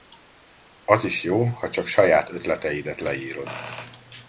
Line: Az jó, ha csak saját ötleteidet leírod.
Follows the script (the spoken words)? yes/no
no